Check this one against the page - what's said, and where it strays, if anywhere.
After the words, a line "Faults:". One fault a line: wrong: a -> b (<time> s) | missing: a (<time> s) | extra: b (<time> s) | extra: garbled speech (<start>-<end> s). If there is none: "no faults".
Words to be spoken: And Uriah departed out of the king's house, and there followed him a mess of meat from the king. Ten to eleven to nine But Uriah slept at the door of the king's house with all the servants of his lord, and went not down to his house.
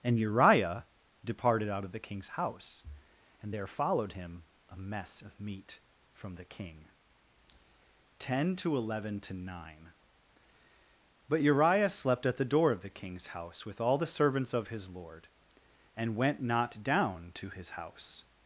And Uriah departed out of the king's house, and there followed him a mess of meat from the king. Ten to eleven to nine But Uriah slept at the door of the king's house with all the servants of his lord, and went not down to his house.
Faults:
no faults